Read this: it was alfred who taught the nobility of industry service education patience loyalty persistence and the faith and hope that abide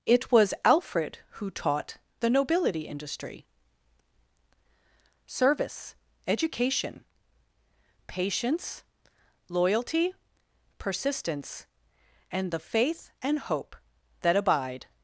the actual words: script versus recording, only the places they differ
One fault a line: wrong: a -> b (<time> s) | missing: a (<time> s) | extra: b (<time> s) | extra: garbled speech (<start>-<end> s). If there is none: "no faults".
missing: of (2.8 s)